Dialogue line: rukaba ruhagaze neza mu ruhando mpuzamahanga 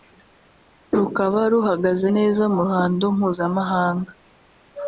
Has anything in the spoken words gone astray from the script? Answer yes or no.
no